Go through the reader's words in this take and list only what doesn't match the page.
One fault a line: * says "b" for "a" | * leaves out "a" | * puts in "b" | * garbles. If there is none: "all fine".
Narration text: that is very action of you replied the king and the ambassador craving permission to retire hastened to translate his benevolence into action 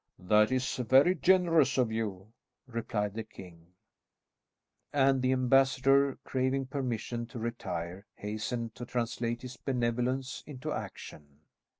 * says "generous" for "action"